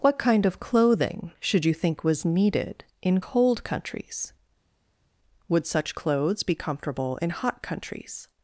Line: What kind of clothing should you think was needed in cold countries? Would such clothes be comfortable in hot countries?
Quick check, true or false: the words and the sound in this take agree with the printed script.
true